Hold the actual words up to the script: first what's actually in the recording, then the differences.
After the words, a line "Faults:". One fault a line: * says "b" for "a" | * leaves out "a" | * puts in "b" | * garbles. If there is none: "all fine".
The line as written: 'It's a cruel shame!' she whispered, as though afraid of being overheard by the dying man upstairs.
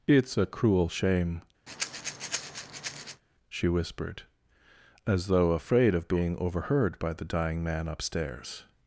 'It's a cruel shame!' she whispered, as though afraid of being overheard by the dying man upstairs.
Faults:
all fine